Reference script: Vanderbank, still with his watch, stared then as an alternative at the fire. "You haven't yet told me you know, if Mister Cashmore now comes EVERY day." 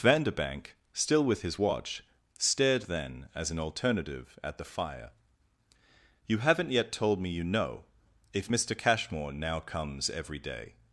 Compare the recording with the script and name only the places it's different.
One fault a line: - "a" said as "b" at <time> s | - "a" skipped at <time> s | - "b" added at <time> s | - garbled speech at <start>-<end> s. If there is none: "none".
none